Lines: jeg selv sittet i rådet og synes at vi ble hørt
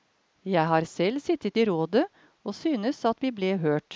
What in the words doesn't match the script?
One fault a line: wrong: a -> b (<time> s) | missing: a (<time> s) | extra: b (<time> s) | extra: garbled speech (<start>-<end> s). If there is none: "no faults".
extra: har (0.7 s)